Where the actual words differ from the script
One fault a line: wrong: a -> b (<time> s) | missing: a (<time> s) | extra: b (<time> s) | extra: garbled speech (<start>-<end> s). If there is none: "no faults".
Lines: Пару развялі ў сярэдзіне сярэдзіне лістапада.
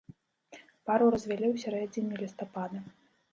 missing: сярэдзіне (2.2 s)